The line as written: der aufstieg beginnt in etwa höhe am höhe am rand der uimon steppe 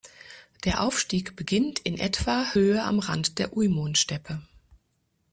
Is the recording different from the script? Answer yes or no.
yes